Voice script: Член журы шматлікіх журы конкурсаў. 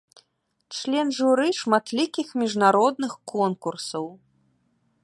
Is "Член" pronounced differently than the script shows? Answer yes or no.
no